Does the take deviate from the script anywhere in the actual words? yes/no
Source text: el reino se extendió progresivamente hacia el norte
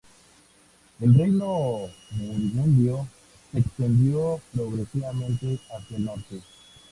yes